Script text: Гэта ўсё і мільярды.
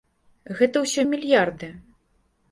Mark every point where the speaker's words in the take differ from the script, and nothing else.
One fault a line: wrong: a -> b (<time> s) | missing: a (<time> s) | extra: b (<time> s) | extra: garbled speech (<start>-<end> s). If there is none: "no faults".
no faults